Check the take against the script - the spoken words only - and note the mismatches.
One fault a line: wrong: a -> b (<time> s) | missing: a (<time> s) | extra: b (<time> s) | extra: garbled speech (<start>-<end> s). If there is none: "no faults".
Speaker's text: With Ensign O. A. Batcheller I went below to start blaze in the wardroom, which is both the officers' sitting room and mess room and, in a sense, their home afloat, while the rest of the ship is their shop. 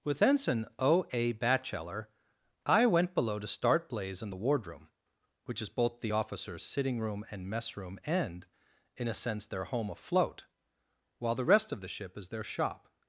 no faults